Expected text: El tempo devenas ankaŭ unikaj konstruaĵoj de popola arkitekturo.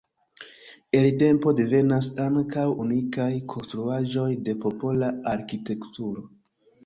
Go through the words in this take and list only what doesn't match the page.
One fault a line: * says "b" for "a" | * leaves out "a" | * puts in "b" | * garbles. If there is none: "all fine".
all fine